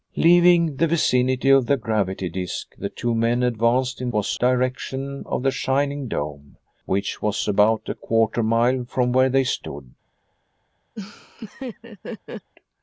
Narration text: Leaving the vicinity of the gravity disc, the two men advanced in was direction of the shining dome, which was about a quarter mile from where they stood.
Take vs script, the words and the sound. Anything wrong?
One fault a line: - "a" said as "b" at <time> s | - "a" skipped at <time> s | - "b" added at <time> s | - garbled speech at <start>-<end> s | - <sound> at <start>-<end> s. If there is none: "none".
- laugh at 11.0-12.5 s